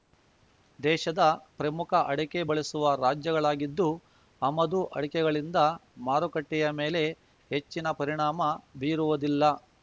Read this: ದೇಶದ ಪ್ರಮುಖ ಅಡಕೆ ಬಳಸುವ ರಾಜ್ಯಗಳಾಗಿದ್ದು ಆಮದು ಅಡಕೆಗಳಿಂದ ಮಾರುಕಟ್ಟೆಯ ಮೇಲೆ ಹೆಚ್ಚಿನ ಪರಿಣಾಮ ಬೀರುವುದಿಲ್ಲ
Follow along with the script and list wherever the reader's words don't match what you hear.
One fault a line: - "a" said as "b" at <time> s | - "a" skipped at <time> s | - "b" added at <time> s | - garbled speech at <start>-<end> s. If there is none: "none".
none